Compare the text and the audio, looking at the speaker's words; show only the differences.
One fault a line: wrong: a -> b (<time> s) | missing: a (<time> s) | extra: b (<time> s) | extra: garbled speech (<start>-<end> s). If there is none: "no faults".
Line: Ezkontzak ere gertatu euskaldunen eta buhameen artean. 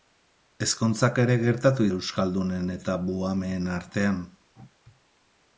no faults